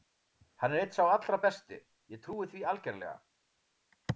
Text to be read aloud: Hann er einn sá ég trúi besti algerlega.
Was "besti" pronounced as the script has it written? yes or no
no